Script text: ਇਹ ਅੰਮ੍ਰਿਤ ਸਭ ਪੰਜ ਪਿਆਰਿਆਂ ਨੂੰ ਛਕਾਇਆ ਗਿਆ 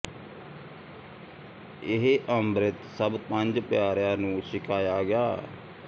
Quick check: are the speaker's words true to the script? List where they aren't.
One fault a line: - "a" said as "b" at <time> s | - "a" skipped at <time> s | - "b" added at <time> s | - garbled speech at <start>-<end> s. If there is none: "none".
none